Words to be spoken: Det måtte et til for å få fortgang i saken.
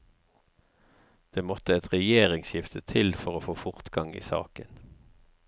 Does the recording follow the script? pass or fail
fail